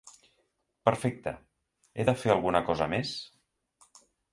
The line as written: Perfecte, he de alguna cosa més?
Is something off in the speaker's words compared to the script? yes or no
yes